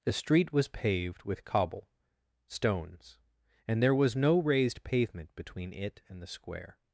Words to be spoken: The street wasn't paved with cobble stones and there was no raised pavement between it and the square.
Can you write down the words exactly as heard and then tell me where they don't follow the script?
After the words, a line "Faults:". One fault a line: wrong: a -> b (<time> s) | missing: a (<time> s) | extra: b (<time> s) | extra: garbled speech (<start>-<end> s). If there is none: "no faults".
The street was paved with cobble stones and there was no raised pavement between it and the square.
Faults:
wrong: wasn't -> was (0.5 s)